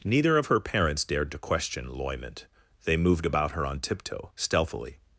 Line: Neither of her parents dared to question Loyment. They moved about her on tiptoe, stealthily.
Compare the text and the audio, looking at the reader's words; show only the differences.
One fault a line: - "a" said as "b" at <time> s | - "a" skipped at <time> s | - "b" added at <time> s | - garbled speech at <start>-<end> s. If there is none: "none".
none